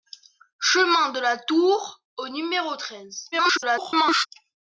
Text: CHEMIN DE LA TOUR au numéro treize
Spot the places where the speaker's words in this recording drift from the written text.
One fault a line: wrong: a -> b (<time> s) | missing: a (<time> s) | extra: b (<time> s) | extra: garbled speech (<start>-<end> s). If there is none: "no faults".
extra: garbled speech (3.3-4.3 s)